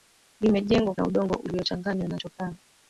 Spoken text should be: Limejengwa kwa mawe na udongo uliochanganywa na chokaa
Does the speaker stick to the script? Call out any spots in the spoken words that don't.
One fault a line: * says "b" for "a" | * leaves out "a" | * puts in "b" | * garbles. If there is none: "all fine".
* leaves out "kwa mawe"